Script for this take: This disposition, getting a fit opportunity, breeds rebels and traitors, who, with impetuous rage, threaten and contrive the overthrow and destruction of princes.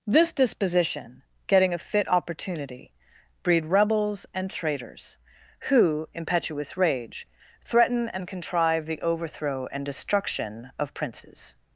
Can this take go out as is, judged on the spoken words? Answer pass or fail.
fail